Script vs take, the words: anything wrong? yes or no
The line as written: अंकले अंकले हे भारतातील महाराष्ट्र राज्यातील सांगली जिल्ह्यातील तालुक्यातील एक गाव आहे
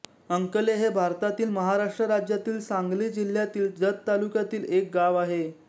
yes